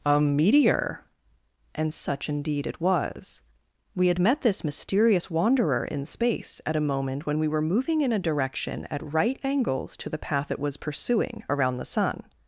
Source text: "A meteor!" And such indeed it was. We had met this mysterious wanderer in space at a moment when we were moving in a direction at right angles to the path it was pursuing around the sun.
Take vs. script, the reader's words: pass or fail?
pass